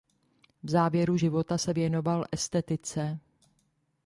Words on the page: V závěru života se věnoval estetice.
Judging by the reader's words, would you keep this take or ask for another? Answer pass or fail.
pass